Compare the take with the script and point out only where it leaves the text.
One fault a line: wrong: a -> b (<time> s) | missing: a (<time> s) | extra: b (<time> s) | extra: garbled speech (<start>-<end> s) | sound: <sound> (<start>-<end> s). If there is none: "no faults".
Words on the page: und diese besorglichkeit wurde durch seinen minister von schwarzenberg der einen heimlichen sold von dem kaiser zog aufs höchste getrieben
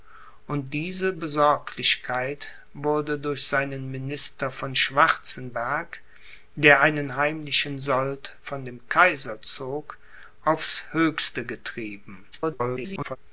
extra: garbled speech (12.3-13.2 s)